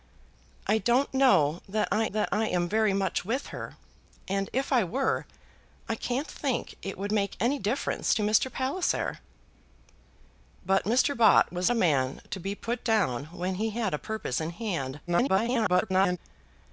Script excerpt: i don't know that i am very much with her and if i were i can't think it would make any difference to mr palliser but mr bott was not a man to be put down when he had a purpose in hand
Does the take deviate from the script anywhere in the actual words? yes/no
yes